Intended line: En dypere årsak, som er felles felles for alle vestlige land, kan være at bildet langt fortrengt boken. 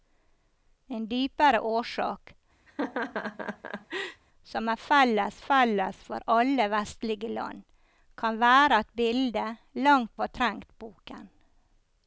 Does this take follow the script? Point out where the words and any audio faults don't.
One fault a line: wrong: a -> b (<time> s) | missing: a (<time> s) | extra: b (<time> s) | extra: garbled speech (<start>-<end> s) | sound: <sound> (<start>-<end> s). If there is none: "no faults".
sound: laugh (2.7-4.2 s)